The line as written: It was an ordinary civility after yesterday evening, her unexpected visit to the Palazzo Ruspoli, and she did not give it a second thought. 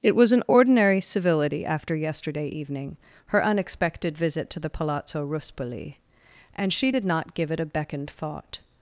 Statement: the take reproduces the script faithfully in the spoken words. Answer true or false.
false